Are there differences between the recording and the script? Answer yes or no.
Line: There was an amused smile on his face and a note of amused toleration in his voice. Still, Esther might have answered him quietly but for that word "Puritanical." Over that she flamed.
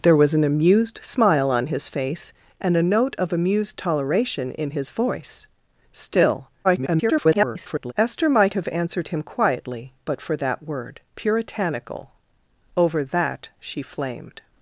yes